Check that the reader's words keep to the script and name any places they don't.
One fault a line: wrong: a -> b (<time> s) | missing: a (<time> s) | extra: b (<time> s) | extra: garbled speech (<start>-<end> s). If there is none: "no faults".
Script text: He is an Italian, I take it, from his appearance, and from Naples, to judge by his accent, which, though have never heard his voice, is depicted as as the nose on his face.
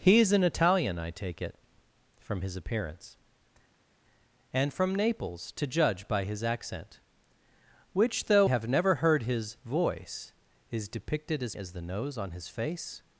no faults